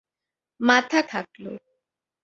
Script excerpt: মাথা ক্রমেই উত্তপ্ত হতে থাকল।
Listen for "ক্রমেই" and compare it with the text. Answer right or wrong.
wrong